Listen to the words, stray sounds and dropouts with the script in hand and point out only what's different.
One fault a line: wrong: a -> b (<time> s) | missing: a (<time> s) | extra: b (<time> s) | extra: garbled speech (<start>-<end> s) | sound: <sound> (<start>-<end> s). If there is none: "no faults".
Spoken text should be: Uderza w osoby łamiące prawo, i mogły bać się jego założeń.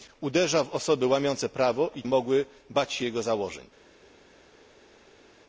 no faults